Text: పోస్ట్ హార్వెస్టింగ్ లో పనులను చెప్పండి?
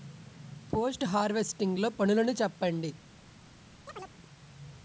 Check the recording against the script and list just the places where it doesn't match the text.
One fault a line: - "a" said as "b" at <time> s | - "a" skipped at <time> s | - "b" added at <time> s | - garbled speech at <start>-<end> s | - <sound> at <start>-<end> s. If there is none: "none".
- chirp at 3.9-4.2 s